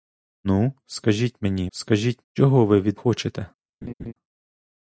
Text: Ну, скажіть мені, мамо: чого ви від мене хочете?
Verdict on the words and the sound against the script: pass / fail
fail